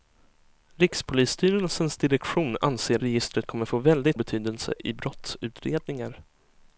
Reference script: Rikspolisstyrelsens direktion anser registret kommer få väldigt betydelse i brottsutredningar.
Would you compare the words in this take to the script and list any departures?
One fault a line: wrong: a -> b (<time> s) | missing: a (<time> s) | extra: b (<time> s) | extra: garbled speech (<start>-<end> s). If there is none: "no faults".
no faults